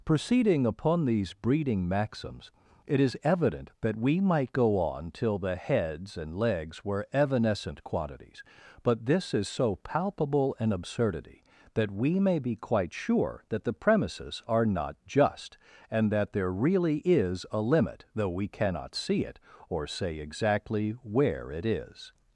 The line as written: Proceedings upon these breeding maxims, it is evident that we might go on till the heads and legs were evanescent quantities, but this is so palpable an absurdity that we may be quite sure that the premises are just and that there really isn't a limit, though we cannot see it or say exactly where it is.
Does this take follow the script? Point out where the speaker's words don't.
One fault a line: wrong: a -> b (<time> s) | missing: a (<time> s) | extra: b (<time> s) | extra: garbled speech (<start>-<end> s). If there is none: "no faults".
wrong: Proceedings -> Proceeding (0.0 s)
extra: not (14.7 s)
wrong: isn't -> is (17.1 s)